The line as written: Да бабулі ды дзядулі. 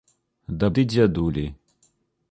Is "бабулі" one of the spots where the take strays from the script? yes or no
yes